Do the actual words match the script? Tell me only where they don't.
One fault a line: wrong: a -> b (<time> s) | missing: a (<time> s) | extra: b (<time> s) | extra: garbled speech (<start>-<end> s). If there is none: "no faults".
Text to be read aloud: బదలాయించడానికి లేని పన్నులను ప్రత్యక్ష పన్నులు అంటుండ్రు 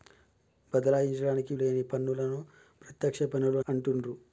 no faults